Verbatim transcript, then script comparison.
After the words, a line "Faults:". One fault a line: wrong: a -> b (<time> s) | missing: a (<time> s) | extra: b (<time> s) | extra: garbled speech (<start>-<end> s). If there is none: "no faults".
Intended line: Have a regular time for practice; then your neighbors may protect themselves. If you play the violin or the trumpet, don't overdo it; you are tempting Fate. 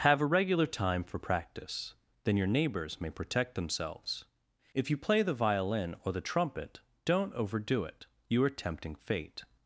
Have a regular time for practice; then your neighbors may protect themselves. If you play the violin or the trumpet, don't overdo it; you are tempting Fate.
Faults:
no faults